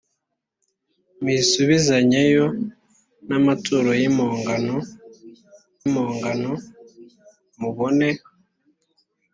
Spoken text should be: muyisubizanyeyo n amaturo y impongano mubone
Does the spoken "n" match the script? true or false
true